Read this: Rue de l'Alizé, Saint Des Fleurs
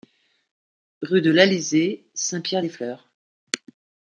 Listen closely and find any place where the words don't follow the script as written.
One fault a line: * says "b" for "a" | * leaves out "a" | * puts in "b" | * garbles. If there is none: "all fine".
* puts in "Pierre"